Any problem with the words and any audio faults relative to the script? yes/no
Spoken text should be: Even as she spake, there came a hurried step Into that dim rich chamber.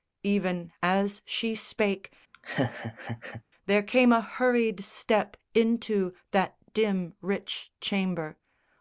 yes